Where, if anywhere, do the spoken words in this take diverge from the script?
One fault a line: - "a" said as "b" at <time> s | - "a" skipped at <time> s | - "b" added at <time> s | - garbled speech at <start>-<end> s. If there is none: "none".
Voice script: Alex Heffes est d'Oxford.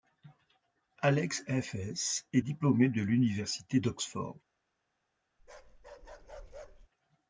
- "diplômé de l'université" added at 2.4 s